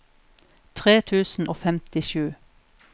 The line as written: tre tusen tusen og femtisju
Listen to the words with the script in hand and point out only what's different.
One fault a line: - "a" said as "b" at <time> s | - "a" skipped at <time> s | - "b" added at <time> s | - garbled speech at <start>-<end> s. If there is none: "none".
- "tusen" skipped at 1.5 s